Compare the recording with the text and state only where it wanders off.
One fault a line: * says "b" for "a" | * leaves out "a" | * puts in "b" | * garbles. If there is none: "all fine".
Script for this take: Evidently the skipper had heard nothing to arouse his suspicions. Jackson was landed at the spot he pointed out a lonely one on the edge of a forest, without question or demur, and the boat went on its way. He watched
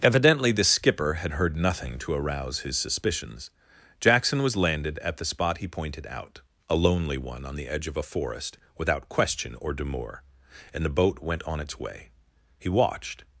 all fine